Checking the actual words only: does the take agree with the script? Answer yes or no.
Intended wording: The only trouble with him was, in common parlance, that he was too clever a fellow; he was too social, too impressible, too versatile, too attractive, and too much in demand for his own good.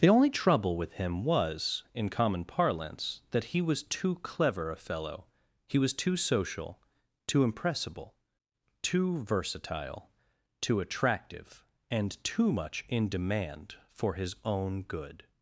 yes